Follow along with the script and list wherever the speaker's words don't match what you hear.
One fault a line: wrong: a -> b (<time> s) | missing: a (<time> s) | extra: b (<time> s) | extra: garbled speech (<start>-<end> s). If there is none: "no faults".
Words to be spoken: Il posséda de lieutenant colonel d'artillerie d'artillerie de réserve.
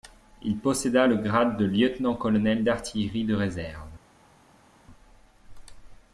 extra: le grade (1.0 s)
missing: d'artillerie (3.3 s)